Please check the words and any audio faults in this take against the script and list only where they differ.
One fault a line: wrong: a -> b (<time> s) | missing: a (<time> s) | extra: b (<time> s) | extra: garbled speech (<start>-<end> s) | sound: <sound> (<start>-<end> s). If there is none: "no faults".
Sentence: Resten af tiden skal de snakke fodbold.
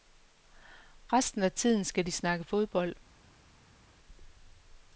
no faults